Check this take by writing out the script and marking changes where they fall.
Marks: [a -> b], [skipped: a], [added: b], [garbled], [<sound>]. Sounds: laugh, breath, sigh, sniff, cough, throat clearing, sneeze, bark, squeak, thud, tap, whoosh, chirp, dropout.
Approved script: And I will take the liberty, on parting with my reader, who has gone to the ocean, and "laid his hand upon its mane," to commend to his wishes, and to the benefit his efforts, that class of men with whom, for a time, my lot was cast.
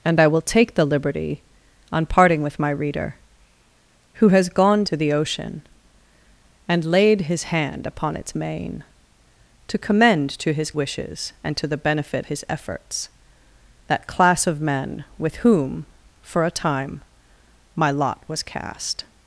And I will take the liberty, on parting with my reader, who has gone to the ocean, and "laid his hand upon its mane," to commend to his wishes, and to the benefit his efforts, that class of men with whom, for a time, my lot was cast.